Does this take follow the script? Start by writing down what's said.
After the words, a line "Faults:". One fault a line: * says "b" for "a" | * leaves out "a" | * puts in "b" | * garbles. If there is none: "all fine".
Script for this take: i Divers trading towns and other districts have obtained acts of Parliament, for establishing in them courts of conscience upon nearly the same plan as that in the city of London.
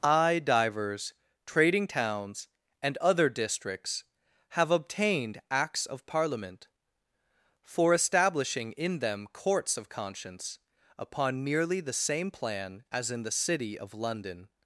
i Divers trading towns and other districts have obtained acts of Parliament, for establishing in them courts of conscience upon nearly the same plan as in the city of London.
Faults:
* leaves out "that"